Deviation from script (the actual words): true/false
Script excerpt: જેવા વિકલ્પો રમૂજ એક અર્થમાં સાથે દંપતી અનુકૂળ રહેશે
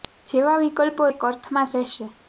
true